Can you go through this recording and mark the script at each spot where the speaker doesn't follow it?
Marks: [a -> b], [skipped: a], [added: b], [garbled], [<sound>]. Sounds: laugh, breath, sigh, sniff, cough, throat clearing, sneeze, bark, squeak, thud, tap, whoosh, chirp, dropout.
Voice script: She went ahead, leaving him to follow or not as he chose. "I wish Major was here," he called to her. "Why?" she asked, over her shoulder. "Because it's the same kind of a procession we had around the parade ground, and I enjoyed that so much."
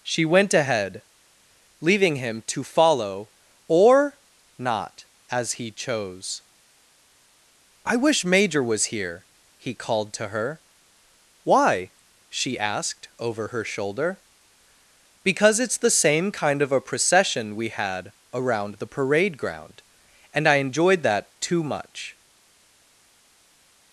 She went ahead, leaving him to follow or not as he chose. "I wish Major was here," he called to her. "Why?" she asked, over her shoulder. "Because it's the same kind of a procession we had around the parade ground, and I enjoyed that [so -> too] much."